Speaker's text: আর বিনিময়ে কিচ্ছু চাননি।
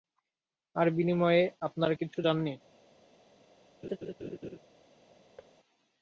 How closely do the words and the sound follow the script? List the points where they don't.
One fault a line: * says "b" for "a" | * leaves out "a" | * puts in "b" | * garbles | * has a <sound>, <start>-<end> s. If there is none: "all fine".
* puts in "আপনারা"
* has a laugh, 3.8-4.6 s
* has a thud, 5.4-5.5 s